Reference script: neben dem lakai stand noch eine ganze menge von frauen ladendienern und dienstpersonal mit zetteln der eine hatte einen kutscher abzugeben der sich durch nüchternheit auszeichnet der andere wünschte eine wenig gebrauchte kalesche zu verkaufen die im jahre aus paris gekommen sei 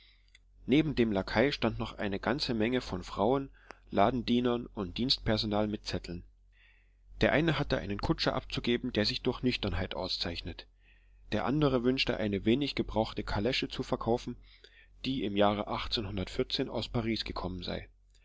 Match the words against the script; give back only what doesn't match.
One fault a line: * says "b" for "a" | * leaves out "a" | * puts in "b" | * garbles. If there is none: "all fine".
all fine